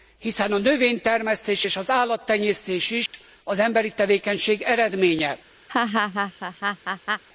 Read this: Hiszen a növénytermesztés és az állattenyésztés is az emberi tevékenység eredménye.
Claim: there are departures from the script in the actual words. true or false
false